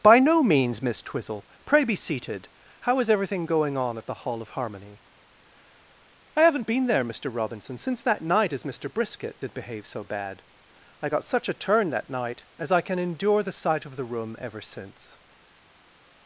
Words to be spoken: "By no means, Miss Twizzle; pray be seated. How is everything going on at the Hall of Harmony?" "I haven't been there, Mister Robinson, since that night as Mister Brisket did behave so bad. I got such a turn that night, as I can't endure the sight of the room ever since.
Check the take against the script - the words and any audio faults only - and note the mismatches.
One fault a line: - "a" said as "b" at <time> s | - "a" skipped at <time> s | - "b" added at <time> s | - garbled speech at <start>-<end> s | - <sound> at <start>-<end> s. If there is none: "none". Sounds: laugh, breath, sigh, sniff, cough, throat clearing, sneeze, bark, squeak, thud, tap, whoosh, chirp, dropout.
- "can't" said as "can" at 12.8 s